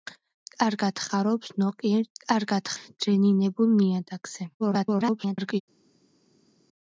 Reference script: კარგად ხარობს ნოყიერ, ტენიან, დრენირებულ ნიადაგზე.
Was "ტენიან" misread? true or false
true